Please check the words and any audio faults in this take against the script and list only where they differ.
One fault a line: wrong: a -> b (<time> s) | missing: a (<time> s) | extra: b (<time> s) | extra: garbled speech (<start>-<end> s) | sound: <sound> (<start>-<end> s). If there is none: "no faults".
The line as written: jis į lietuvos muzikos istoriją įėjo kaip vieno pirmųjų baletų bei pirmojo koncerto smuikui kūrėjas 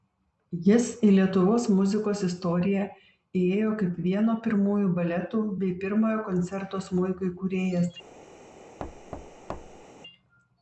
sound: thud (8.8-9.8 s)